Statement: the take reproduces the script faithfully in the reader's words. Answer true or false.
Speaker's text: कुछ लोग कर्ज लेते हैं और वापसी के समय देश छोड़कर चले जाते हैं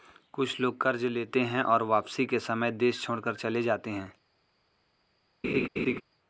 true